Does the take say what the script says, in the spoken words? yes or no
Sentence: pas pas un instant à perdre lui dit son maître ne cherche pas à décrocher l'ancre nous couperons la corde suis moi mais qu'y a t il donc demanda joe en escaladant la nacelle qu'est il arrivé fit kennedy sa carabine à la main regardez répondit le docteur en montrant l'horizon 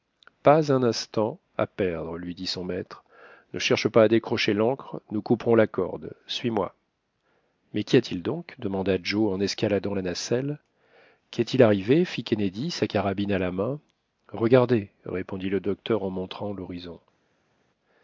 no